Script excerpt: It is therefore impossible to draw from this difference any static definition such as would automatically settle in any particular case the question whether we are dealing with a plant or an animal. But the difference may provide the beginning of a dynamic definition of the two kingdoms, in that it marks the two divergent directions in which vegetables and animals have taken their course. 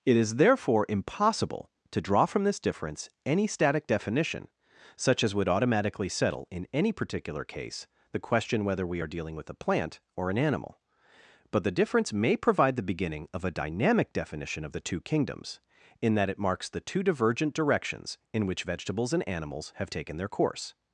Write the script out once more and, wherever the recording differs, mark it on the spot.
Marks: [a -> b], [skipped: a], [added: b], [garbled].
It is therefore impossible to draw from this difference any static definition such as would automatically settle in any particular case the question whether we are dealing with a plant or an animal. But the difference may provide the beginning of a dynamic definition of the two kingdoms, in that it marks the two divergent directions in which vegetables and animals have taken their course.